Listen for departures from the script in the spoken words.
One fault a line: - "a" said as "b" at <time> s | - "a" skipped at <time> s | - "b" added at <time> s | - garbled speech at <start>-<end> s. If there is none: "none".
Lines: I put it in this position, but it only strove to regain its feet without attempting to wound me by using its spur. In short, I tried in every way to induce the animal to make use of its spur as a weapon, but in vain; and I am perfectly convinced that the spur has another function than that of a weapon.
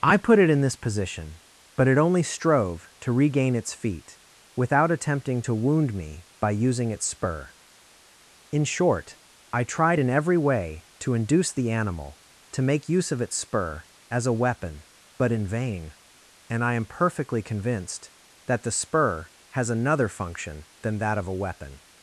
none